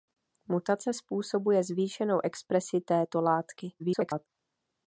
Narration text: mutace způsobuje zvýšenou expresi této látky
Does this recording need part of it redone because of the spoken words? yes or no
yes